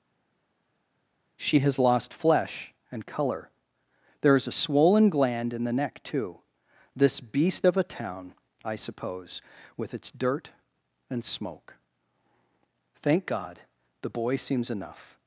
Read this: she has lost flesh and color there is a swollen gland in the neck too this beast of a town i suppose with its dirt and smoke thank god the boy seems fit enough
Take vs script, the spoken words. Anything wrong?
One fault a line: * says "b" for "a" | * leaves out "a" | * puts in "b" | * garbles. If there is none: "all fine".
* leaves out "fit"